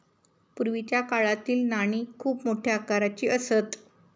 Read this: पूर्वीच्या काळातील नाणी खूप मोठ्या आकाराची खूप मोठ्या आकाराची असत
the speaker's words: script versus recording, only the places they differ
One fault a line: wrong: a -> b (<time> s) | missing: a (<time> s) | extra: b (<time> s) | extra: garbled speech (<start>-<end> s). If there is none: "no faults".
missing: खूप मोठ्या आकाराची (3.3 s)